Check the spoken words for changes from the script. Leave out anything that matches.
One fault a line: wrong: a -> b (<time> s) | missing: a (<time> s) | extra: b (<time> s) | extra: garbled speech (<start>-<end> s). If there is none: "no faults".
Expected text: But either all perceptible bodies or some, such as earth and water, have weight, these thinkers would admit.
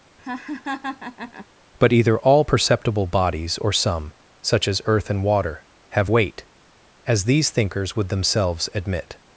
extra: as (7.1 s)
extra: themselves (8.1 s)